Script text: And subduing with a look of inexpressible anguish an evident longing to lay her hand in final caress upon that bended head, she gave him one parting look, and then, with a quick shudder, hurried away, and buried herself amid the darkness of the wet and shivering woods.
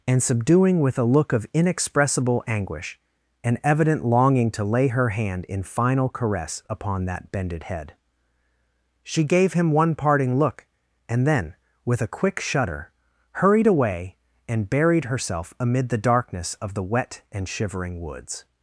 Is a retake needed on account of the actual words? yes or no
no